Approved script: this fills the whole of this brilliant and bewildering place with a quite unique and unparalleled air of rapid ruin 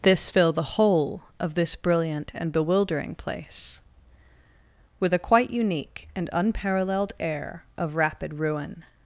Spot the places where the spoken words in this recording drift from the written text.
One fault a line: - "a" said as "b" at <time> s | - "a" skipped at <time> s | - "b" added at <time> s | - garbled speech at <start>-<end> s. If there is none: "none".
- "fills" said as "fill" at 0.3 s